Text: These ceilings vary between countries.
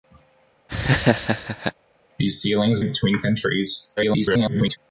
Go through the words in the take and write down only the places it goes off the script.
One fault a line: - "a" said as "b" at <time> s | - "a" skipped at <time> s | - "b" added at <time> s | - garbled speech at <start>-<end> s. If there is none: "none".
- "vary" skipped at 2.8 s
- garbled speech at 4.0-4.8 s